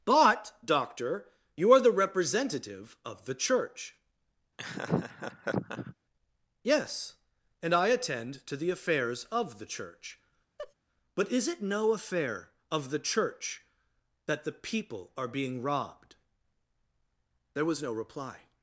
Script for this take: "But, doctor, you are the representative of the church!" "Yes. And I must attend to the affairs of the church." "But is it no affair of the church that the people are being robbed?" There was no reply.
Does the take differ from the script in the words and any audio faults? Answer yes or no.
yes